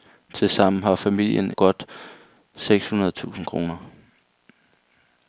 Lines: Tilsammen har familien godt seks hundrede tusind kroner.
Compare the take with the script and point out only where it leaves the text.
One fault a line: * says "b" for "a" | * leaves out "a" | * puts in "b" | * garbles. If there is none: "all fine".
all fine